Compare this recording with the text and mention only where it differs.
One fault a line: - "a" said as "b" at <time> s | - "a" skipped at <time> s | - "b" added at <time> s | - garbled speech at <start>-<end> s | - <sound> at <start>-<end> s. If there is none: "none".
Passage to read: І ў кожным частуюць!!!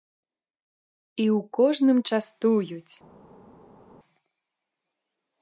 none